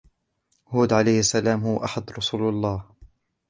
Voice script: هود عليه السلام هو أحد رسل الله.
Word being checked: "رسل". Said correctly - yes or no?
yes